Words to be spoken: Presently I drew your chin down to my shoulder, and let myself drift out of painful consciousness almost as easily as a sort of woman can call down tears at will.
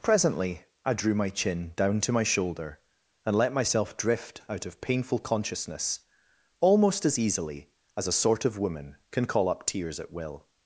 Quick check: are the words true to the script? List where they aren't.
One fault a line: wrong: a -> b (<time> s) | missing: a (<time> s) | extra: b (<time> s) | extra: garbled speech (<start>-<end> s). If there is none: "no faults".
wrong: your -> my (1.1 s)
wrong: down -> up (9.5 s)